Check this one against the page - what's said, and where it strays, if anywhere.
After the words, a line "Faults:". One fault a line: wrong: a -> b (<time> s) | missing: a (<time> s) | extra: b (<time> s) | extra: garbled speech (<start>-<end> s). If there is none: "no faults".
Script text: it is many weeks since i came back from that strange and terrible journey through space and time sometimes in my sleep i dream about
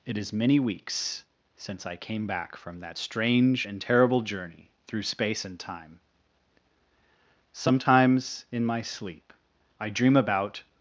it is many weeks since i came back from that strange and terrible journey through space and time sometimes in my sleep i dream about
Faults:
no faults